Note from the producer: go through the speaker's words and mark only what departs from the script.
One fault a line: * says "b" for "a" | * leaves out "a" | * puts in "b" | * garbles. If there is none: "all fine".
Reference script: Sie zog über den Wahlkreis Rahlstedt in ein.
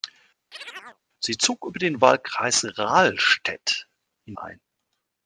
all fine